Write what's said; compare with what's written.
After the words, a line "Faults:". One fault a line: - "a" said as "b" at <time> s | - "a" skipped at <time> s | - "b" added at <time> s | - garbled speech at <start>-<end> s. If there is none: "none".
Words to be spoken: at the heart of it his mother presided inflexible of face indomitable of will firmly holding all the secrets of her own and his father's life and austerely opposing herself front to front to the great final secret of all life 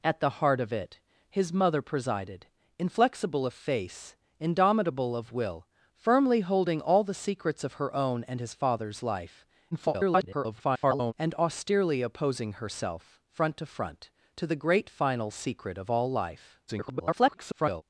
at the heart of it his mother presided inflexible of face indomitable of will firmly holding all the secrets of her own and his father's life [garbled] and austerely opposing herself front to front to the great final secret of all life [garbled]
Faults:
- garbled speech at 9.7-11.1 s
- garbled speech at 16.7-17.8 s